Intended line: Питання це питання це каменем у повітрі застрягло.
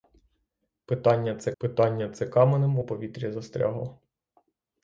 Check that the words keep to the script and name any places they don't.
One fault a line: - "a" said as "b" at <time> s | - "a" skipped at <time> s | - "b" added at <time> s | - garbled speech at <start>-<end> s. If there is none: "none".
none